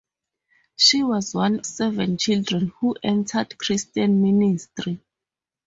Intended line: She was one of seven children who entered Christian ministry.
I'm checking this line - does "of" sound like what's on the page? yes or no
no